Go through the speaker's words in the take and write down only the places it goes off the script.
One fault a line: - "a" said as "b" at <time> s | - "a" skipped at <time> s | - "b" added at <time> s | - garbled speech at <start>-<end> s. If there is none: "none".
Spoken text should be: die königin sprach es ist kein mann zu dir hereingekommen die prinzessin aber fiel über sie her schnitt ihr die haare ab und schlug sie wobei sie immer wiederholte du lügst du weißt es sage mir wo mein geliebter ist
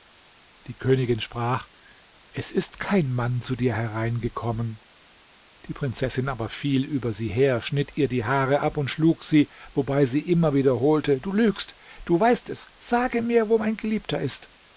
none